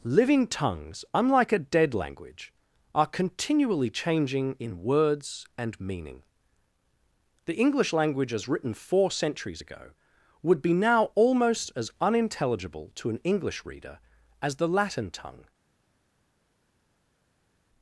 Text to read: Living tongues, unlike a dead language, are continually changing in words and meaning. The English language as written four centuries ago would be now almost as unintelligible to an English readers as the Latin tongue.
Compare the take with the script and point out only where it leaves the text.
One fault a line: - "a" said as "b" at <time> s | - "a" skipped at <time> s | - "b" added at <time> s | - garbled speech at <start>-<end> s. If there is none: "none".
- "readers" said as "reader" at 13.7 s